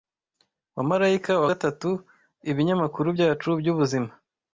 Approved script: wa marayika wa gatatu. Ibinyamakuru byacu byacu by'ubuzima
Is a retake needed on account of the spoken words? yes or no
yes